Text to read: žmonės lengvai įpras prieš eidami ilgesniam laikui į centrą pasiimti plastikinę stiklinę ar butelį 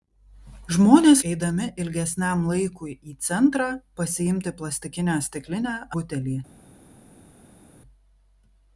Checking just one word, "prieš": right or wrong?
wrong